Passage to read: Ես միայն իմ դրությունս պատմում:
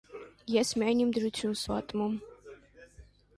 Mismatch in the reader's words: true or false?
false